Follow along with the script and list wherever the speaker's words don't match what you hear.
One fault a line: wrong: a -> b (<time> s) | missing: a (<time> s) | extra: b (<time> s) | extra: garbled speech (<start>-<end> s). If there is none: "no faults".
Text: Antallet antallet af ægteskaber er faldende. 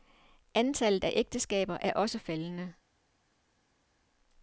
missing: antallet (1.0 s)
extra: også (1.9 s)